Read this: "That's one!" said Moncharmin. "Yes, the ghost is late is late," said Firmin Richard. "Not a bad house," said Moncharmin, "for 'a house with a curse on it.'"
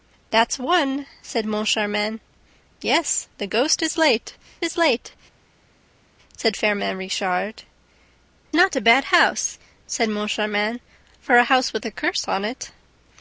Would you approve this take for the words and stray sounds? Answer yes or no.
yes